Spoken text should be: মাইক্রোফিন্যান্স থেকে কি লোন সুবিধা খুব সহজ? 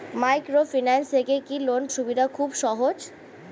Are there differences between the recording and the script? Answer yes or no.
no